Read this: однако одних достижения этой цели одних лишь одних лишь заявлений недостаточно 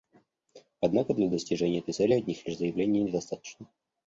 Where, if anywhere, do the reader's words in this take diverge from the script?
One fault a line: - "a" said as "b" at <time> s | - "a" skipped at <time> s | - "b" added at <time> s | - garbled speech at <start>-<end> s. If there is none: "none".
- "одних" said as "для" at 1.1 s
- "одних лишь" skipped at 2.6 s